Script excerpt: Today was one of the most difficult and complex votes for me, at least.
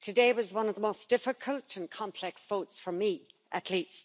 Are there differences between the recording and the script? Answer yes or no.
no